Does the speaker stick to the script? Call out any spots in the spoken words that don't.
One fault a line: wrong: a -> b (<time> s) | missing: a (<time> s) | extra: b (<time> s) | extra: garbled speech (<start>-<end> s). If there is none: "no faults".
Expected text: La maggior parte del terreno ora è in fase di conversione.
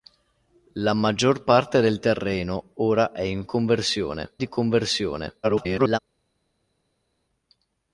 wrong: fase -> conversione (3.4 s)
extra: garbled speech (5.4-6.0 s)